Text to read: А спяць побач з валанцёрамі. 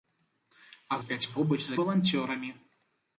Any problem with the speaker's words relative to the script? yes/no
no